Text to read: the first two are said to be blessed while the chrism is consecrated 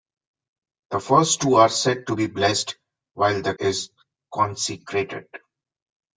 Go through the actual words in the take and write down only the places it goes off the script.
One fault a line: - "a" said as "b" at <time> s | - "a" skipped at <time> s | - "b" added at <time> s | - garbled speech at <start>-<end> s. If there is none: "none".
- "chrism" skipped at 3.5 s